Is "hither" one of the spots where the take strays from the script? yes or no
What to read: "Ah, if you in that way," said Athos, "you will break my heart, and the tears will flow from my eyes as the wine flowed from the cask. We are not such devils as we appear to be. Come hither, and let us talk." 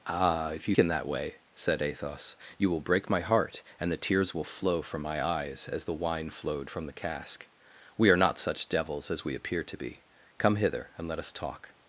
no